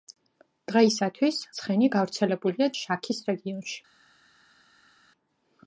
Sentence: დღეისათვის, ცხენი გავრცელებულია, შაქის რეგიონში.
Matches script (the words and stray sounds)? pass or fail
pass